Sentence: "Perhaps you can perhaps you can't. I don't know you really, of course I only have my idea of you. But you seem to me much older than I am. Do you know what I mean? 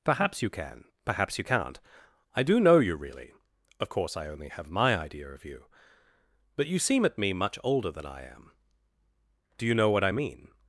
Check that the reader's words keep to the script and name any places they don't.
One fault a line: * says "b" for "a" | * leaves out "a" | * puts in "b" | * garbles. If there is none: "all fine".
* says "do" for "don't"
* says "at" for "to"